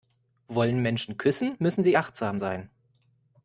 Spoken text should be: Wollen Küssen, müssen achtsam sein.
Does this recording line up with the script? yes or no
no